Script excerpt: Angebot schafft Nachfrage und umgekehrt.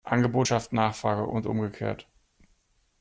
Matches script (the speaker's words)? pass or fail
pass